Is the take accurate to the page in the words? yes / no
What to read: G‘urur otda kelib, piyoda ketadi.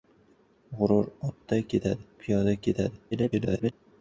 no